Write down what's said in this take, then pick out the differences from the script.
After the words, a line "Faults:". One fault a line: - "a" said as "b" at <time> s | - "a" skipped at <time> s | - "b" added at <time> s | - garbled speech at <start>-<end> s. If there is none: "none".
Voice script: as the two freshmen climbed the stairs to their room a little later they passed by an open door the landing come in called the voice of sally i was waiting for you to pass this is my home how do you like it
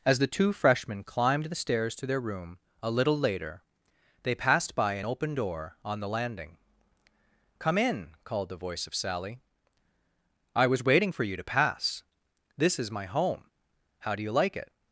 as the two freshmen climbed the stairs to their room a little later they passed by an open door on the landing come in called the voice of sally i was waiting for you to pass this is my home how do you like it
Faults:
- "on" added at 5.8 s